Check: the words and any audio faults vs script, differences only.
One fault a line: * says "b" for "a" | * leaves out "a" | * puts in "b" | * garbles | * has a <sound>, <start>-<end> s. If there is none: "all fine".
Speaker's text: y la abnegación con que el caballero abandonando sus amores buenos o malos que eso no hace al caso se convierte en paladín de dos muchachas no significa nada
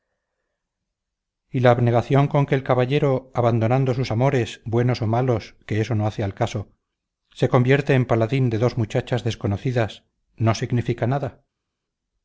* puts in "desconocidas"